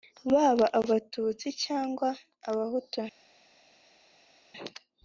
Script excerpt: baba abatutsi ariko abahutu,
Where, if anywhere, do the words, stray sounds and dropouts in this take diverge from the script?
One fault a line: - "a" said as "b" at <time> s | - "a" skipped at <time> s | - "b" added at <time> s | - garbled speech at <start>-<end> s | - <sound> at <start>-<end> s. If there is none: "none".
- "ariko" said as "cyangwa" at 1.6 s